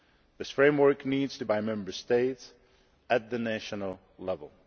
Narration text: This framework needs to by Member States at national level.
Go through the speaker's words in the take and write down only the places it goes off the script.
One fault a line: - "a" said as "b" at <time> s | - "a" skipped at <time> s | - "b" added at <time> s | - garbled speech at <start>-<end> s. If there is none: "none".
none